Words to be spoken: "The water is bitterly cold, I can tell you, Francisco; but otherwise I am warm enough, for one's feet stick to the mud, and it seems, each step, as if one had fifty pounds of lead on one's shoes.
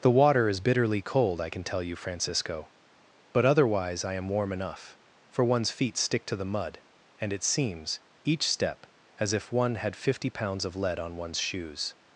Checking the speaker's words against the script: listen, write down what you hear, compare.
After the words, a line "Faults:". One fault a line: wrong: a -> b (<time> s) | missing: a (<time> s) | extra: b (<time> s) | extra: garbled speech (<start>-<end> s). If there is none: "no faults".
"The water is bitterly cold, I can tell you, Francisco; but otherwise I am warm enough, for one's feet stick to the mud, and it seems, each step, as if one had fifty pounds of lead on one's shoes.
Faults:
no faults